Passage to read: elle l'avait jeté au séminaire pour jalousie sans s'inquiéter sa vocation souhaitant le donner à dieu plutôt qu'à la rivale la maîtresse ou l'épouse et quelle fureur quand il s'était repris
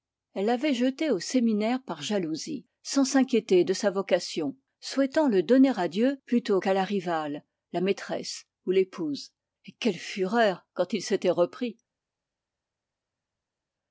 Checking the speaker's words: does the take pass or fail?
fail